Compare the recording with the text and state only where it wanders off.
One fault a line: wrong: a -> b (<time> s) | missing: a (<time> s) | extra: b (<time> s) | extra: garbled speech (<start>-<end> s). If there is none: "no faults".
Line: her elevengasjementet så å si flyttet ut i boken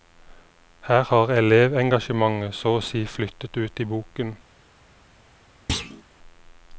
extra: har (1.0 s)